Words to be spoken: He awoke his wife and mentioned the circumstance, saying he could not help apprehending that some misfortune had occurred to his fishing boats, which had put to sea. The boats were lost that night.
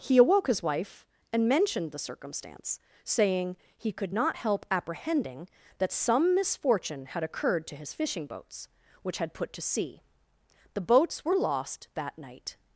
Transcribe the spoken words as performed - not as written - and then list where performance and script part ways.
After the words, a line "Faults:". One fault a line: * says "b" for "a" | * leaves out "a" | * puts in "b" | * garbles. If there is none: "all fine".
He awoke his wife and mentioned the circumstance, saying he could not help apprehending that some misfortune had occurred to his fishing boats, which had put to sea. The boats were lost that night.
Faults:
all fine